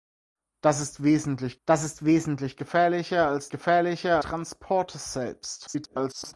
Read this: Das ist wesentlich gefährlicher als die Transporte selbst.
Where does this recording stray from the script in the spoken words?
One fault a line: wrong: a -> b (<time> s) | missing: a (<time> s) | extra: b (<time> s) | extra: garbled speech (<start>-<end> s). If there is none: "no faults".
extra: das ist wesentlich (1.7 s)
wrong: die -> gefährlicher (3.5 s)
extra: garbled speech (5.7-6.3 s)